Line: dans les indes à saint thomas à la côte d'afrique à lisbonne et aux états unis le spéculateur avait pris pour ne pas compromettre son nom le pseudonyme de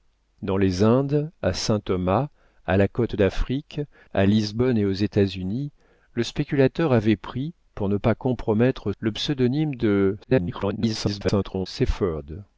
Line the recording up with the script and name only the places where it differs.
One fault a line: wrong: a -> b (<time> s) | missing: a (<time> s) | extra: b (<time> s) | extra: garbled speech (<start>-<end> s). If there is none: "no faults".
missing: son nom (8.9 s)
extra: garbled speech (10.2-11.7 s)